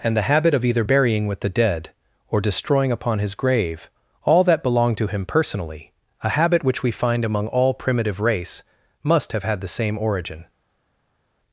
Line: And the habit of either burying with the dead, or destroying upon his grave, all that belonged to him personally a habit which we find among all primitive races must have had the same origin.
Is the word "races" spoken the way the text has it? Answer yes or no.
no